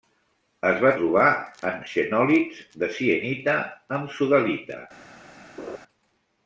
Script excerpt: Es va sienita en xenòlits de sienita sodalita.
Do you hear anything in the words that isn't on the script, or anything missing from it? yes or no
yes